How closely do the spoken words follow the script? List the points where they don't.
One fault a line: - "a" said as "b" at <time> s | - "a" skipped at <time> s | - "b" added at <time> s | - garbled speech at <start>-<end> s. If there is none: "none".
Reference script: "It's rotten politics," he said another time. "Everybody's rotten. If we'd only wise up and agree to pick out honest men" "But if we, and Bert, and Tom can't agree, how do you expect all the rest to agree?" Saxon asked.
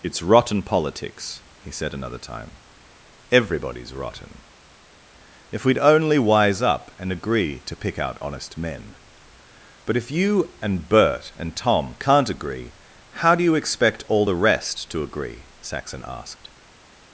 - "we" said as "you" at 10.1 s